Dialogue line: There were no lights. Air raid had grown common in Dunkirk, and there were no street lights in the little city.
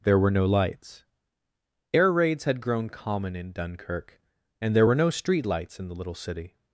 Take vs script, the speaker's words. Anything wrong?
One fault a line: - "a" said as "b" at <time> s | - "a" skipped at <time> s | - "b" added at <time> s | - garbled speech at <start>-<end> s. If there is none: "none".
- "raid" said as "raids" at 2.1 s